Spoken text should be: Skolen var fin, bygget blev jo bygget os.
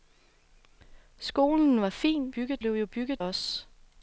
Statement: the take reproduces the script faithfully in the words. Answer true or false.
true